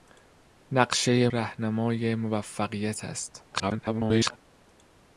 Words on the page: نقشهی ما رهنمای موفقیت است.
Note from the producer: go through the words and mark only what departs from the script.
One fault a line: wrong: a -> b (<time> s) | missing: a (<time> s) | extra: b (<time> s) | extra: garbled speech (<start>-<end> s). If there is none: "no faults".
missing: ما (1.3 s)
extra: garbled speech (3.5-4.4 s)